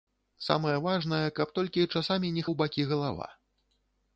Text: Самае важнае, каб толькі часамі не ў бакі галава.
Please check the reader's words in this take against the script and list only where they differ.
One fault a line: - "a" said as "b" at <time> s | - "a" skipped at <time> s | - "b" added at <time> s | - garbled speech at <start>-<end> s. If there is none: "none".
none